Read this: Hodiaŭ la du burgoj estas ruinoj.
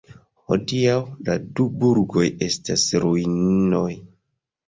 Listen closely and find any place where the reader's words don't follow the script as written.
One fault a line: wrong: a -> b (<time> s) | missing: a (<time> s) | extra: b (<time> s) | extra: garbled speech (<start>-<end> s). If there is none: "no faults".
no faults